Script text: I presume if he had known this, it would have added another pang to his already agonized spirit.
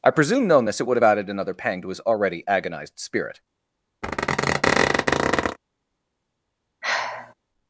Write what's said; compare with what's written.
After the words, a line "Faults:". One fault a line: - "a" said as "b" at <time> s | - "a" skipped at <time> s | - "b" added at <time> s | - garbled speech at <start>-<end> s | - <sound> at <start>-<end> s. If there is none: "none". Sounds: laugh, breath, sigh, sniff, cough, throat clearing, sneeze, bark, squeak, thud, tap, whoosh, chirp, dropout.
I presume known this, it would have added another pang to his already agonized spirit.
Faults:
- "if he had" skipped at 0.5 s
- squeak at 4.0-5.6 s
- sigh at 6.8-7.3 s